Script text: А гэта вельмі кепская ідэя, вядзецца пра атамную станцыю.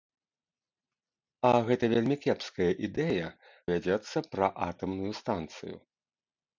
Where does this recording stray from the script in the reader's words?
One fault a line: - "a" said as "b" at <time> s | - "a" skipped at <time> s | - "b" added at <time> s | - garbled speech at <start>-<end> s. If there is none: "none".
none